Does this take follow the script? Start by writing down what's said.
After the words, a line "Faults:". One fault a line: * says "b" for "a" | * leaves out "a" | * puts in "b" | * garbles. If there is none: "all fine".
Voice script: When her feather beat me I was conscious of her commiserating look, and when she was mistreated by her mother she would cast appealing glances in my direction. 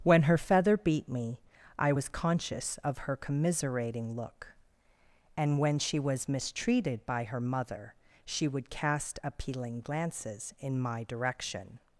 When her feather beat me I was conscious of her commiserating look, and when she was mistreated by her mother she would cast appealing glances in my direction.
Faults:
all fine